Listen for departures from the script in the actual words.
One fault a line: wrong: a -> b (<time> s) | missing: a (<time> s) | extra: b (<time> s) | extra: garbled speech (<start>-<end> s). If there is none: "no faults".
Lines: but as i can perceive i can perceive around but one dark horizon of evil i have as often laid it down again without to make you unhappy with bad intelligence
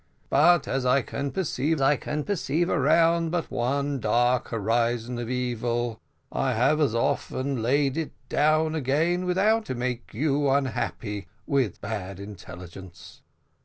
no faults